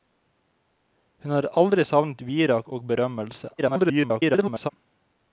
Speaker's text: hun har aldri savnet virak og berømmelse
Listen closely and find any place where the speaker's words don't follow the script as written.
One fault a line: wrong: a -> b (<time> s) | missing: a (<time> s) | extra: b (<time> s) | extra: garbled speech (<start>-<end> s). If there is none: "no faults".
extra: garbled speech (3.6-4.7 s)